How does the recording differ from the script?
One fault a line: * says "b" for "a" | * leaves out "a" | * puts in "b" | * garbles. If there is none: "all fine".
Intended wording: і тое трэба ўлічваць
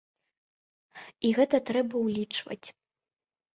* says "гэта" for "тое"